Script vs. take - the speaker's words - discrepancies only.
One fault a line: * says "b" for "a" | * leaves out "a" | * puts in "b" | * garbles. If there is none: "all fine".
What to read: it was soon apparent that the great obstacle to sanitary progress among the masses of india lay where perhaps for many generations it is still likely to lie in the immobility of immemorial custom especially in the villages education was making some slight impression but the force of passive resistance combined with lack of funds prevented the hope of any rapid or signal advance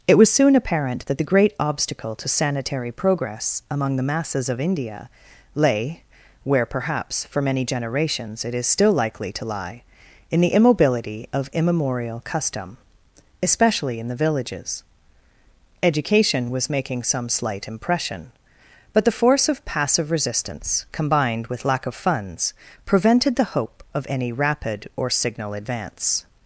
all fine